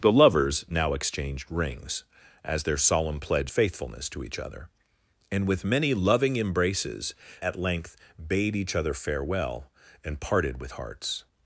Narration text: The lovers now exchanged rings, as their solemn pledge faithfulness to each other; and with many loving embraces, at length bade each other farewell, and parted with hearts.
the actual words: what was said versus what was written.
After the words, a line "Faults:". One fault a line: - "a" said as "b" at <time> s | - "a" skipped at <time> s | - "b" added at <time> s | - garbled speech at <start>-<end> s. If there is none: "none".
The lovers now exchanged rings, as their solemn pledge faithfulness to each other; and with many loving embraces, at length bade each other farewell, and parted with hearts.
Faults:
none